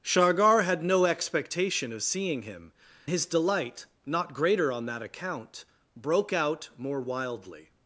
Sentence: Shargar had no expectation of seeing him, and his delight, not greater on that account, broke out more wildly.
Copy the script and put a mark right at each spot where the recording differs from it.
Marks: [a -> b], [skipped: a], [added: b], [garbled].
Shargar had no expectation of seeing him, [skipped: and] his delight, not greater on that account, broke out more wildly.